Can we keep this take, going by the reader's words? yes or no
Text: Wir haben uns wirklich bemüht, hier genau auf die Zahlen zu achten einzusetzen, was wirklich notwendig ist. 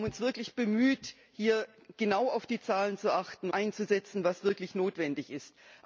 yes